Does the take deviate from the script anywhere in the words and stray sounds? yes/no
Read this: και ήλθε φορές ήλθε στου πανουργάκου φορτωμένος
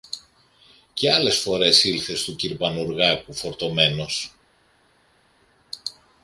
yes